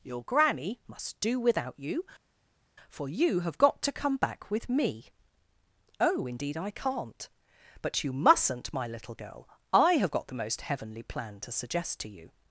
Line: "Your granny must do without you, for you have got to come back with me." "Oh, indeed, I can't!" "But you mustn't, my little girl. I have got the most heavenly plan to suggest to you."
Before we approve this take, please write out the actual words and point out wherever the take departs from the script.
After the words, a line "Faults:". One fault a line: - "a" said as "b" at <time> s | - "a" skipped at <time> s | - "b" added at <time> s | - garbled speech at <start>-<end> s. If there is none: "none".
"Your granny must do without you, for you have got to come back with me." "Oh, indeed, I can't!" "But you mustn't, my little girl. I have got the most heavenly plan to suggest to you."
Faults:
none